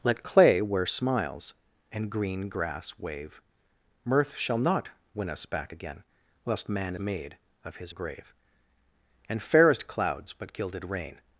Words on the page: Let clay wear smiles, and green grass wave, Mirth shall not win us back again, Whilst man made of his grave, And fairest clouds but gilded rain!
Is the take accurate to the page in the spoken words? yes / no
yes